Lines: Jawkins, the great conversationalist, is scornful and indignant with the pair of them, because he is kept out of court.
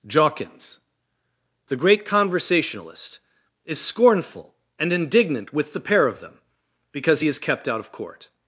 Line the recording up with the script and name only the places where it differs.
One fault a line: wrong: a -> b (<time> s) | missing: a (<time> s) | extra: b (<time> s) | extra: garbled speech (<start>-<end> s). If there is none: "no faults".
no faults